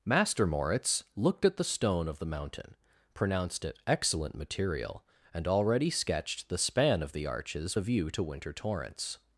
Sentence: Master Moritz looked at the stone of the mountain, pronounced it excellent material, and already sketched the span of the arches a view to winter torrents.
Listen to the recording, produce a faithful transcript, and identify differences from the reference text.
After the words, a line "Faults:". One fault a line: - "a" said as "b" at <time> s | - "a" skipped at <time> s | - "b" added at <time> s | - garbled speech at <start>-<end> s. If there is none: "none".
Master Moritz looked at the stone of the mountain, pronounced it excellent material, and already sketched the span of the arches a view to winter torrents.
Faults:
none